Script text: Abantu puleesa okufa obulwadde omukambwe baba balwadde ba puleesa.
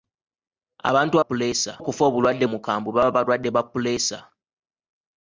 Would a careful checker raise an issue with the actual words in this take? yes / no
no